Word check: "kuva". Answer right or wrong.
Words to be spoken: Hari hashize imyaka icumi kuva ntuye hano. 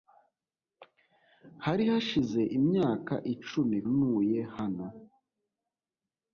wrong